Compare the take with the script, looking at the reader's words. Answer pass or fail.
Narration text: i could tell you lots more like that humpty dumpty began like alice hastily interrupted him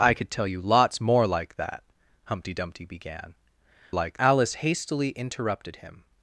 pass